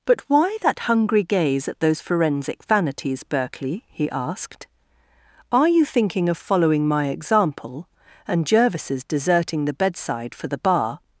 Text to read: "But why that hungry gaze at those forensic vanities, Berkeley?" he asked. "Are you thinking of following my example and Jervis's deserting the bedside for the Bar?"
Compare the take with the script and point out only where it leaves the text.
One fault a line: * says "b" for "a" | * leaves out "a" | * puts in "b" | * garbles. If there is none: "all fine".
all fine